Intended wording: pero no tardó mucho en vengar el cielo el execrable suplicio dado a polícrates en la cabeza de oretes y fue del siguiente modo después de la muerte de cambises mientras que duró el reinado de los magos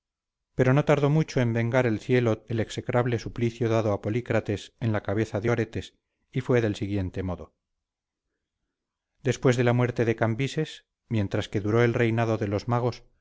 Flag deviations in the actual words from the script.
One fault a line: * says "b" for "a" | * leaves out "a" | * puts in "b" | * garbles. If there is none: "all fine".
all fine